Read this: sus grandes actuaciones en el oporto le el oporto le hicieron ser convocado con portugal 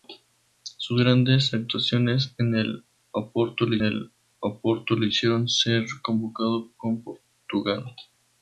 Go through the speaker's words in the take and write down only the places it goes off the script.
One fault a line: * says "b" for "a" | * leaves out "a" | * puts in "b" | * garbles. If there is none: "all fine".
all fine